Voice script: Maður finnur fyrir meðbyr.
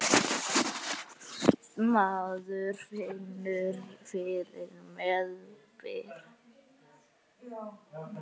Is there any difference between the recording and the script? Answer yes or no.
no